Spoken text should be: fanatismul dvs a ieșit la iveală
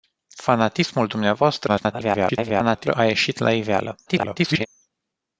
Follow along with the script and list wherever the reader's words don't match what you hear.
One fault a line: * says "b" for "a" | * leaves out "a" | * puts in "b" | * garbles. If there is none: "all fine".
* garbles
* garbles